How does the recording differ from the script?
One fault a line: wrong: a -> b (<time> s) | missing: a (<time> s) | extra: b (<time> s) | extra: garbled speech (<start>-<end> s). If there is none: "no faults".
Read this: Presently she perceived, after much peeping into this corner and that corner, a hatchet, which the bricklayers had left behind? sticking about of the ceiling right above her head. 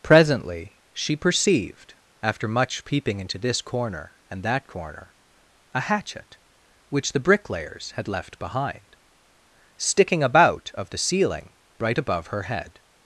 no faults